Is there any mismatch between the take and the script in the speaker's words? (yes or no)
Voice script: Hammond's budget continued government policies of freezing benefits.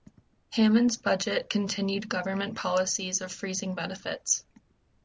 no